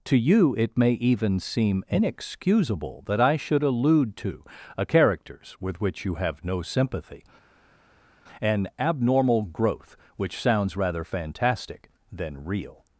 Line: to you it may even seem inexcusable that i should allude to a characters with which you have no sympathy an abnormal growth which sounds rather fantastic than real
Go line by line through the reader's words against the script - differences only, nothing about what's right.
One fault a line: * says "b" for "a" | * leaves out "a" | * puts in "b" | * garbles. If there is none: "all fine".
all fine